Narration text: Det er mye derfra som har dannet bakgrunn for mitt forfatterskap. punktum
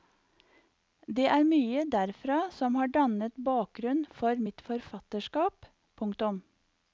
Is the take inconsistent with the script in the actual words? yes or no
no